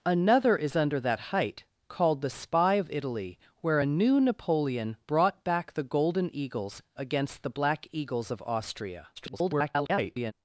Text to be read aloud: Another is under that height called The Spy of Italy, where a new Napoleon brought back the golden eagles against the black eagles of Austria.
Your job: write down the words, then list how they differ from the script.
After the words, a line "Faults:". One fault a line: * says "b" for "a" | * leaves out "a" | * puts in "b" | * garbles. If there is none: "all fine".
Another is under that height called The Spy of Italy, where a new Napoleon brought back the golden eagles against the black eagles of Austria. [garbled]
Faults:
* garbles